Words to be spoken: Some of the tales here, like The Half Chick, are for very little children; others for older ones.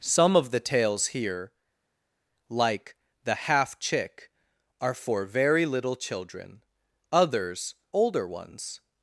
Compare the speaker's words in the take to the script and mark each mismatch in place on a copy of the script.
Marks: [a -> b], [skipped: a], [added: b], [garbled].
Some of the tales here, like The Half Chick, are for very little children; others [skipped: for] older ones.